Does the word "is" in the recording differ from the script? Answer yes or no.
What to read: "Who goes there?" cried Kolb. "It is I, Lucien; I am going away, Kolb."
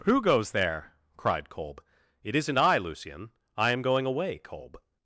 yes